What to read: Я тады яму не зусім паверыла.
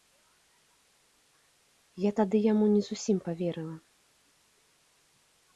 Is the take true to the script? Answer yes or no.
yes